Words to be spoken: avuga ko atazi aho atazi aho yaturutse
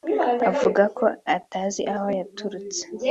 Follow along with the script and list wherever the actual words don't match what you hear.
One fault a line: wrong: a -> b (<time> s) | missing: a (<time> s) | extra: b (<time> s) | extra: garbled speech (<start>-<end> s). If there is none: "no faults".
missing: atazi aho (2.1 s)